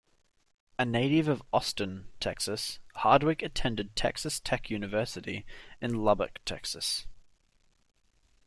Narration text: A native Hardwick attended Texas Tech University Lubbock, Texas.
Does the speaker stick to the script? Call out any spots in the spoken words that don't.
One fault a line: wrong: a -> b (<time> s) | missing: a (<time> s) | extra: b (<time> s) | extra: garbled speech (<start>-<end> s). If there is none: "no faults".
extra: of Austin Texas (1.3 s)
extra: in (5.8 s)